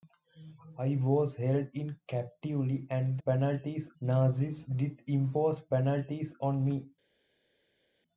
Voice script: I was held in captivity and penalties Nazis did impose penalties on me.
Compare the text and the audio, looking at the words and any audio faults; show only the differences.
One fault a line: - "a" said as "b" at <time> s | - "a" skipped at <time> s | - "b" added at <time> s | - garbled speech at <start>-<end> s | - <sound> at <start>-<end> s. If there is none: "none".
none